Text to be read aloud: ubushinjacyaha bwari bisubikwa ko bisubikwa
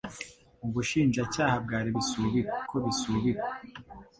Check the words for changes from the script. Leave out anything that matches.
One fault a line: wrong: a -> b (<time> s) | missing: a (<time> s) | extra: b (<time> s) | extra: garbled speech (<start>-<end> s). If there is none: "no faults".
no faults